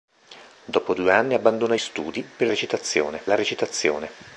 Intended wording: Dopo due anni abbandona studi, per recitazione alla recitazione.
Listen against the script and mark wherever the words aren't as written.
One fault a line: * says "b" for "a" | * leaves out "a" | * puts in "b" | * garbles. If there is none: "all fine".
all fine